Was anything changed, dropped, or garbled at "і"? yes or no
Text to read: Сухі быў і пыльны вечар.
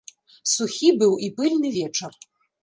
no